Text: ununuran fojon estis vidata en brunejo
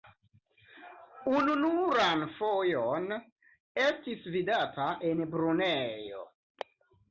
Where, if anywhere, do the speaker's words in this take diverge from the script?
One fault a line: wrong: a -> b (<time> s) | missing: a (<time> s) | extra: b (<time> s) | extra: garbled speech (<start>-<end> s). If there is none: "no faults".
no faults